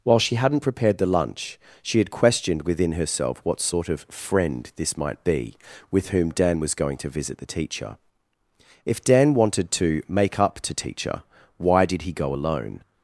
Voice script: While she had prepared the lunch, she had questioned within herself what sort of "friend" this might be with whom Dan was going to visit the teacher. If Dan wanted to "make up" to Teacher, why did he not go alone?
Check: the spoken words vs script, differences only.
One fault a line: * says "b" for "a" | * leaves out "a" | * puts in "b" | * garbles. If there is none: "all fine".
* says "hadn't" for "had"
* leaves out "not"